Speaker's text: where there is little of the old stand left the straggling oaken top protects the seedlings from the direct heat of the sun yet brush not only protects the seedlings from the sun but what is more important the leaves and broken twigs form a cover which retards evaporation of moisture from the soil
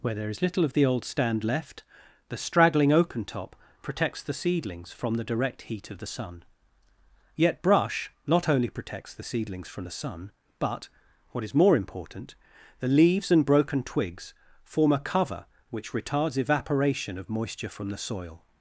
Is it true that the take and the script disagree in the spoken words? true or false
false